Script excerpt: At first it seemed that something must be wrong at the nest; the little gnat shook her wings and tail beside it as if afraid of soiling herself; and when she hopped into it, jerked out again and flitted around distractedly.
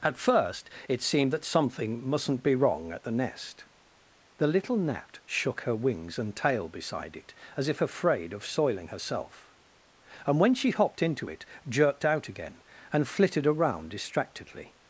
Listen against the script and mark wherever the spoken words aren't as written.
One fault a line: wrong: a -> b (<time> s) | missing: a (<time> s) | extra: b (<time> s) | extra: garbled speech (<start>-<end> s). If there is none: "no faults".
wrong: must -> mustn't (2.1 s)